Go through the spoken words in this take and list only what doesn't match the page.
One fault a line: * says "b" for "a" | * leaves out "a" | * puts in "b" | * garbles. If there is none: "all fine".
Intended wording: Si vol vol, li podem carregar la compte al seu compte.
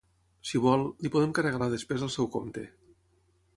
* leaves out "vol"
* says "despesa" for "compte"